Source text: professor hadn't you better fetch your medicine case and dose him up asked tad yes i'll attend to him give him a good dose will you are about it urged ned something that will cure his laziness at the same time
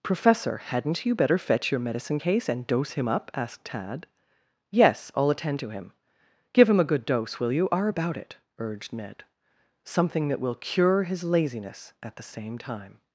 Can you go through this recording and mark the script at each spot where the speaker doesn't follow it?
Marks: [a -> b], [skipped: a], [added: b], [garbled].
professor hadn't you better fetch your medicine case and dose him up asked tad yes i'll attend to him give him a good dose will you are about it urged ned something that will cure his laziness at the same time